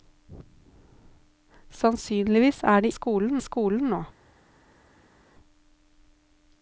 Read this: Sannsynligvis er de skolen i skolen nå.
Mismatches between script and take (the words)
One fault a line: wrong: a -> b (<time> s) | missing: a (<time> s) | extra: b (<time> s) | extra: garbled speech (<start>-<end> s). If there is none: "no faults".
no faults